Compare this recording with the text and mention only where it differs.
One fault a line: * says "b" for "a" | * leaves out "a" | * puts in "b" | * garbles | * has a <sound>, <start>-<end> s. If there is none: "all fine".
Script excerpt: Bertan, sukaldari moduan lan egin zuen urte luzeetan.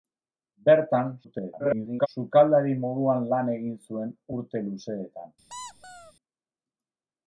* garbles
* has a squeak, 5.5-6.1 s